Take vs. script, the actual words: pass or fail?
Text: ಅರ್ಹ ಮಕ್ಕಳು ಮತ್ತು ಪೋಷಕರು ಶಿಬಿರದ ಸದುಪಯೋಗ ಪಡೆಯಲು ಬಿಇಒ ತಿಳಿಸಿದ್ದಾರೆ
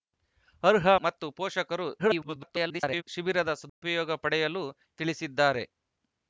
fail